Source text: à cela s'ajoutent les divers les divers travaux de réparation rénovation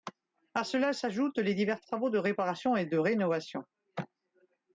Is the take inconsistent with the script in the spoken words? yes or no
yes